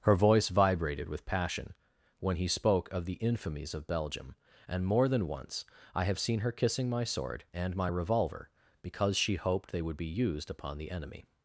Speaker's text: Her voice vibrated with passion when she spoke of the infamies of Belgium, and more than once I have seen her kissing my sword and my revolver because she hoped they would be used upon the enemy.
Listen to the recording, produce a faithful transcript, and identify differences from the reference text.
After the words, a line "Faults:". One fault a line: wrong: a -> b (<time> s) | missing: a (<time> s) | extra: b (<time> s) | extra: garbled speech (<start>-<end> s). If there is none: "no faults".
Her voice vibrated with passion when he spoke of the infamies of Belgium, and more than once I have seen her kissing my sword and my revolver because she hoped they would be used upon the enemy.
Faults:
wrong: she -> he (2.4 s)